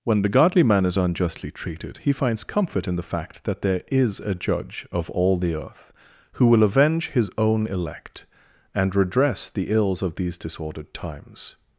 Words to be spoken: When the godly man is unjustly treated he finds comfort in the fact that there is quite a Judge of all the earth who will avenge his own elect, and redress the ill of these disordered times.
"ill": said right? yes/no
no